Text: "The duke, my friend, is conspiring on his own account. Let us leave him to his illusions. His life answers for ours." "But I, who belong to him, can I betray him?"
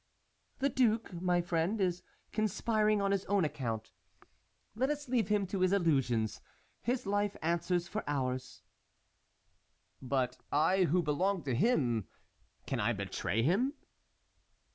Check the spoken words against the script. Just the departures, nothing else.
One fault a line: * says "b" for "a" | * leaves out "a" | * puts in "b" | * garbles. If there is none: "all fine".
all fine